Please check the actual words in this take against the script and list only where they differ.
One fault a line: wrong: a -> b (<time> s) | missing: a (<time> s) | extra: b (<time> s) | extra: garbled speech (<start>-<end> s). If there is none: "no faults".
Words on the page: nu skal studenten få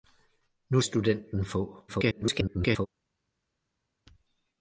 missing: skal (0.8 s)
extra: garbled speech (1.9-2.9 s)